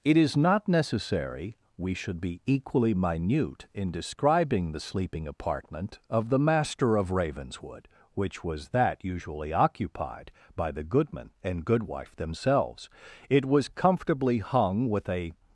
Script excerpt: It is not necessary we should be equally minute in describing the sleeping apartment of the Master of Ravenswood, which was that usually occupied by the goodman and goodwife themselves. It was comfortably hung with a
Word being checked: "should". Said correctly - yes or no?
yes